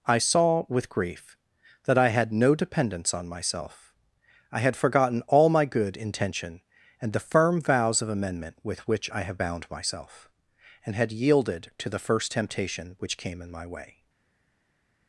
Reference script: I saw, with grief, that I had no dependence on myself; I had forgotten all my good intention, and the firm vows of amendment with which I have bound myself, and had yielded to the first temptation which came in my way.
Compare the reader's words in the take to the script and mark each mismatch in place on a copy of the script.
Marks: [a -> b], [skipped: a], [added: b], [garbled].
I saw, with grief, that I had no dependence on myself; I had forgotten all my good intention, and the firm vows of amendment with which I have bound myself, and had yielded to the first temptation which came in my way.